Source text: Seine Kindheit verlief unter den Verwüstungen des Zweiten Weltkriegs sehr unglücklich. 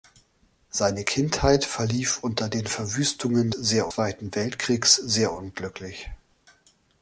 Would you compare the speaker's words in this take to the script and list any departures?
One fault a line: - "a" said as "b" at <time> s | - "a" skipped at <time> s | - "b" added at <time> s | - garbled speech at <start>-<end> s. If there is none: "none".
- "des" said as "sehr" at 3.5 s